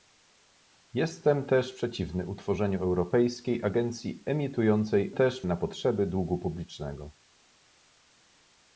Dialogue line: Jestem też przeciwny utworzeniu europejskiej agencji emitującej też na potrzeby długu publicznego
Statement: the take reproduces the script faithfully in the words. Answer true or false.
true